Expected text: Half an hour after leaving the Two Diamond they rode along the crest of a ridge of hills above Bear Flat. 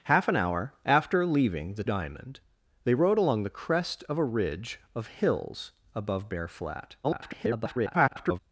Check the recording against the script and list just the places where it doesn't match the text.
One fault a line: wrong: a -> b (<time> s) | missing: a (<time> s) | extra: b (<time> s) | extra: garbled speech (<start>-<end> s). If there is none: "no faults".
missing: Two (1.8 s)
extra: garbled speech (7.0-8.4 s)